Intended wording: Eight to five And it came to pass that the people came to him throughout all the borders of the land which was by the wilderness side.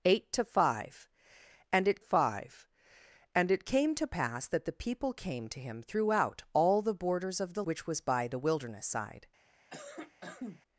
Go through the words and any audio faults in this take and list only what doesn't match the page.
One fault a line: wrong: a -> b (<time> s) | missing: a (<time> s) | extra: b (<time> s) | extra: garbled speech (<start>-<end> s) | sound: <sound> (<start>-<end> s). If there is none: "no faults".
extra: five And it (2.0 s)
missing: land (7.6 s)
sound: cough (9.7-10.6 s)